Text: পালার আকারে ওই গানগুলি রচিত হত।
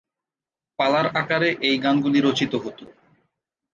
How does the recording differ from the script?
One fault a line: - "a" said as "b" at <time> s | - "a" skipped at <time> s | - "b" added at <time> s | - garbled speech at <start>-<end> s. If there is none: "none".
- "ওই" said as "এই" at 1.6 s